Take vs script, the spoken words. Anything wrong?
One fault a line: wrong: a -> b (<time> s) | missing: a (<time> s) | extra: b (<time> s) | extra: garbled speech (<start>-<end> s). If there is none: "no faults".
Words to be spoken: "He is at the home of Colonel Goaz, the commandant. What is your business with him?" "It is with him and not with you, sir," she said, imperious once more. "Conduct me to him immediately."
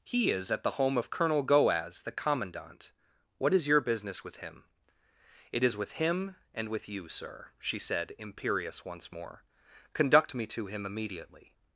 missing: not (6.7 s)